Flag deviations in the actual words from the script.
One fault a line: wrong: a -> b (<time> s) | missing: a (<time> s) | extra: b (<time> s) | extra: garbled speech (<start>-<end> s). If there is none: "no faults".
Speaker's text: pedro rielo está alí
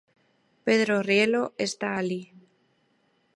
no faults